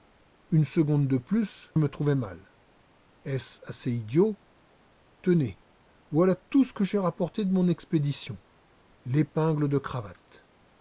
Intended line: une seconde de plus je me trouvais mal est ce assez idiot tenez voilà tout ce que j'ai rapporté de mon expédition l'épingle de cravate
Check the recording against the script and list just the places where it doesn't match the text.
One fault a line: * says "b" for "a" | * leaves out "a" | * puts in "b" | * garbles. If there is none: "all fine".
* leaves out "je"